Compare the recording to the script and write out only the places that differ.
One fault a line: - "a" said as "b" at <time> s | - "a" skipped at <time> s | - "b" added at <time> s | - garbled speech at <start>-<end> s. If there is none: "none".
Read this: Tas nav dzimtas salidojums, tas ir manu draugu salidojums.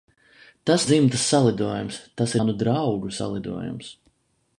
- "nav" skipped at 0.8 s
- "ir" skipped at 2.3 s